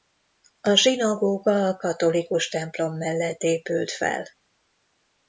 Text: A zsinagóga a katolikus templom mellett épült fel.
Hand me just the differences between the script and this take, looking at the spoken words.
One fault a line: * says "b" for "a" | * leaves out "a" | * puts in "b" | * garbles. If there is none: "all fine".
all fine